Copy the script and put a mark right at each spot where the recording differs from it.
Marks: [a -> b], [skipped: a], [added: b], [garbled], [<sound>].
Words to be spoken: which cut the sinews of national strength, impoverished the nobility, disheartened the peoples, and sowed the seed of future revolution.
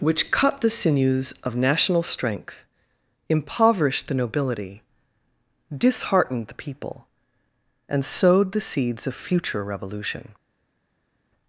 which cut the sinews of national strength, impoverished the nobility, disheartened the [peoples, -> people] and sowed the [seed -> seeds] of future revolution.